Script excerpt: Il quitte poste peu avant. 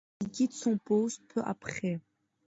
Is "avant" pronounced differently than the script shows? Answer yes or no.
yes